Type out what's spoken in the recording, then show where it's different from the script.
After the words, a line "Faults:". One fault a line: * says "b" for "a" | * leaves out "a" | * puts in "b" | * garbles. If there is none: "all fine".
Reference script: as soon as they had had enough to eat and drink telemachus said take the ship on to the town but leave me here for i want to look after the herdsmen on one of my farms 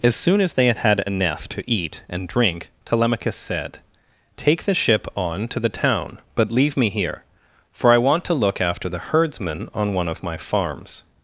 as soon as they had had enough to eat and drink telemachus said take the ship on to the town but leave me here for i want to look after the herdsmen on one of my farms
Faults:
all fine